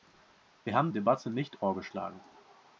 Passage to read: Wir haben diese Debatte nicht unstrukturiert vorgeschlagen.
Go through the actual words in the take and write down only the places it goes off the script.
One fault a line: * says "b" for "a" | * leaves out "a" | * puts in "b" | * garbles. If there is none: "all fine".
* leaves out "diese"
* leaves out "unstrukturiert"